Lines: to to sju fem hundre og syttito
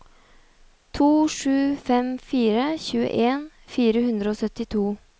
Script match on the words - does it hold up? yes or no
no